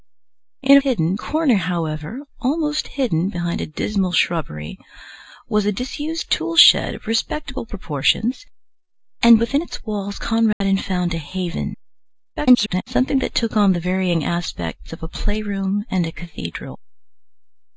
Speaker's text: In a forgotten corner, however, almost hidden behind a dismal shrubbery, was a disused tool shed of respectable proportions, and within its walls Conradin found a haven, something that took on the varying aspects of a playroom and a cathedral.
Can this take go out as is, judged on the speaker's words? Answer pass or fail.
fail